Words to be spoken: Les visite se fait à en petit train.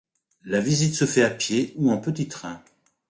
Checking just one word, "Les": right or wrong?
wrong